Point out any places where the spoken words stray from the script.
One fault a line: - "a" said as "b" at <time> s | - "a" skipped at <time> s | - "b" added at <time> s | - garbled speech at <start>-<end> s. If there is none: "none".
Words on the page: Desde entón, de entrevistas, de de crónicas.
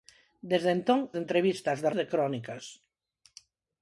none